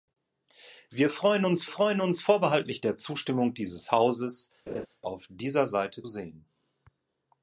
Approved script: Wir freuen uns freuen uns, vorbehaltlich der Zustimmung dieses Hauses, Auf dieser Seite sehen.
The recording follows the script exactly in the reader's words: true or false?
true